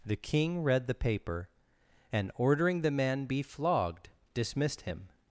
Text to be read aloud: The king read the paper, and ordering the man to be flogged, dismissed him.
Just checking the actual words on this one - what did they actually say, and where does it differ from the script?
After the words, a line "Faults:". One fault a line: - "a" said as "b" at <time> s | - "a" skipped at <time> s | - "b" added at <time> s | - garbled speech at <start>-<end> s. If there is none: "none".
The king read the paper, and ordering the man be flogged, dismissed him.
Faults:
- "to" skipped at 3.3 s